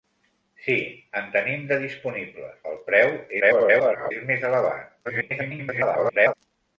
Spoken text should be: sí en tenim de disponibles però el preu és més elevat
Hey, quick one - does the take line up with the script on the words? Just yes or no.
no